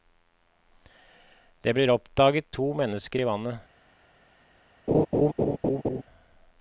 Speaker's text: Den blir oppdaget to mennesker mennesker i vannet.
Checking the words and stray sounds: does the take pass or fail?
fail